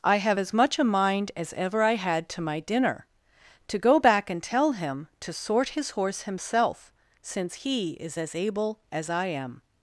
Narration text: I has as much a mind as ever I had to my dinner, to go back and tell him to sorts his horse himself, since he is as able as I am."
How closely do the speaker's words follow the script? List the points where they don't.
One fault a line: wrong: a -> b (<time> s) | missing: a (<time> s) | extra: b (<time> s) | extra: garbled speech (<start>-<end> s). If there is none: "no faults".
wrong: has -> have (0.1 s)
wrong: sorts -> sort (5.3 s)